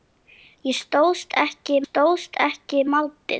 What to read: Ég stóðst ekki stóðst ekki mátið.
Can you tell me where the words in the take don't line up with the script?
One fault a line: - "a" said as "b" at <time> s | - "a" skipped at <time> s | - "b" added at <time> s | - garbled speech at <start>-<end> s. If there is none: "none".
none